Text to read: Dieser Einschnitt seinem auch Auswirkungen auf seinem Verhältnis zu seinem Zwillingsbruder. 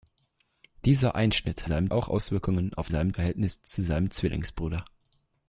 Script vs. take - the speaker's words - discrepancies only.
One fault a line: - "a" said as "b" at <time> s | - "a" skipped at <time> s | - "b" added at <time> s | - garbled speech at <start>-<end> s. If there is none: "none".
none